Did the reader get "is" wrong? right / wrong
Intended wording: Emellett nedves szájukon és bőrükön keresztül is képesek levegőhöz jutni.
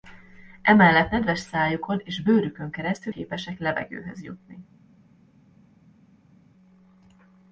wrong